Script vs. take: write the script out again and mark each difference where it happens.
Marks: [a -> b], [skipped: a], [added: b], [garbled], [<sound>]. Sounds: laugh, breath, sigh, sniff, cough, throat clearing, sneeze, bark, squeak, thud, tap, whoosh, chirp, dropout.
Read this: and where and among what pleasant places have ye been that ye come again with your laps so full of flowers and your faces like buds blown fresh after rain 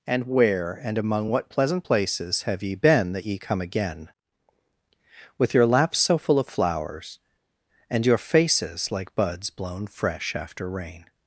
and where and among what pleasant places have ye been that ye come again with your laps so full of flowers and your faces like buds blown fresh after rain